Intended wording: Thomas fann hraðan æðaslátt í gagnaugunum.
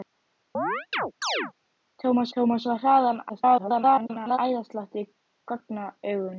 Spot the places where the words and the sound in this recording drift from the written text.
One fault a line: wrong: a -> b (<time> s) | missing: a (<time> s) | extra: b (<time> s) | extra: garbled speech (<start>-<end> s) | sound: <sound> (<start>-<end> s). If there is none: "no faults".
sound: chirp (0.5-1.5 s)
extra: thomas (2.3 s)
extra: garbled speech (3.3-4.4 s)